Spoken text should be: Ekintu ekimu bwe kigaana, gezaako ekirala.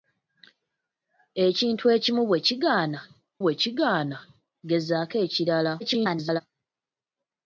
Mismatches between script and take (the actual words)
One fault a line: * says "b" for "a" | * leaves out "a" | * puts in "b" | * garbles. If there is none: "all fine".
* puts in "bwe kigaana"
* garbles